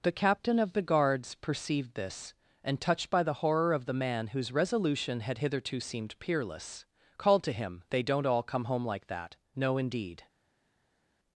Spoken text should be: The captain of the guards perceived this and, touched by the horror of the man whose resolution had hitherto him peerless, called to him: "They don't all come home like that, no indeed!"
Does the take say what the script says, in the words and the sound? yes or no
no